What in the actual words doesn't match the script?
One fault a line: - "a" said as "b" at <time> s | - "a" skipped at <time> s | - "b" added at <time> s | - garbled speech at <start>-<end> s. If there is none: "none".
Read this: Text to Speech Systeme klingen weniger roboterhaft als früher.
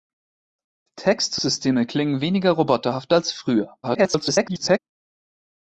- "Speech" skipped at 1.4 s
- garbled speech at 3.8-4.8 s